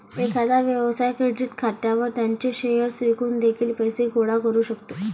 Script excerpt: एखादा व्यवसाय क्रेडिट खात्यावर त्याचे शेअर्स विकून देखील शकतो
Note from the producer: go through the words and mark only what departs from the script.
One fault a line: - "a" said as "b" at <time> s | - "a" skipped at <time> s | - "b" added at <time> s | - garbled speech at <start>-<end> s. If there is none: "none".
- "पैसे गोळा करू" added at 3.7 s